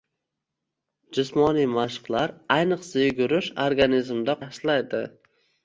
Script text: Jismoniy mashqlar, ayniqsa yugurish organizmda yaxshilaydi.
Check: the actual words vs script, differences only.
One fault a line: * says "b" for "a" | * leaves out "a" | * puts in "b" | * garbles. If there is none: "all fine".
all fine